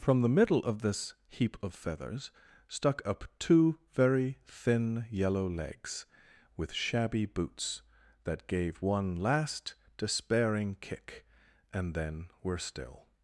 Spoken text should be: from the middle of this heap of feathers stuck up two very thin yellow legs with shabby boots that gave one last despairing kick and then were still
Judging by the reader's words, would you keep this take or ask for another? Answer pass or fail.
pass